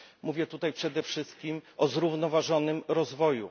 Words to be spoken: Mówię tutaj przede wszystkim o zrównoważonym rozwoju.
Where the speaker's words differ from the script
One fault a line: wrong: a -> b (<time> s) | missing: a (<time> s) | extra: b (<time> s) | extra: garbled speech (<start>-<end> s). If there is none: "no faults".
no faults